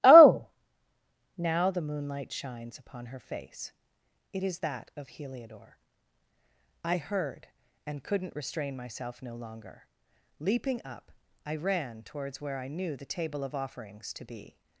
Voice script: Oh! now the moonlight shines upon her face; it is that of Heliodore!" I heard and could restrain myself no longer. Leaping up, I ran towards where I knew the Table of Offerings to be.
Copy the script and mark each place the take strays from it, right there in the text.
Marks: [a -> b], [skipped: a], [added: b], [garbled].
Oh! now the moonlight shines upon her face; it is that of Heliodore!" I heard and [could -> couldn't] restrain myself no longer. Leaping up, I ran towards where I knew the Table of Offerings to be.